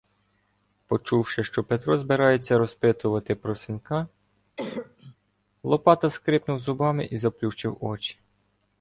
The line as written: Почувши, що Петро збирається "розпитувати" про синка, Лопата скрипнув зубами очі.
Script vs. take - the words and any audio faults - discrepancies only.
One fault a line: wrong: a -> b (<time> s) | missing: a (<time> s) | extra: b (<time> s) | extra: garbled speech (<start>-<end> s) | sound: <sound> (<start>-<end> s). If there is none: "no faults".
sound: cough (4.6-5.2 s)
extra: і заплющив (7.0 s)